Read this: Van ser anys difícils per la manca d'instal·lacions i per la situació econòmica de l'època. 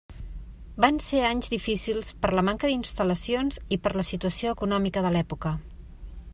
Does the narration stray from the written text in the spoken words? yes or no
no